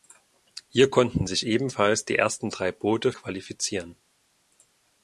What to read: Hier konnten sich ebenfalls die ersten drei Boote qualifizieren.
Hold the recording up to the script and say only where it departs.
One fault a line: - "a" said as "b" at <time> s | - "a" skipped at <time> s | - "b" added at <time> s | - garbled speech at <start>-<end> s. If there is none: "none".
none